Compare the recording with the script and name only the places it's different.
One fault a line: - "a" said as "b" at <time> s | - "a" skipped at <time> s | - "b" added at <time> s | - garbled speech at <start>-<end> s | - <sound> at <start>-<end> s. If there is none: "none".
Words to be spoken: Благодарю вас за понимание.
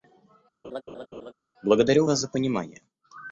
- laugh at 0.6-1.3 s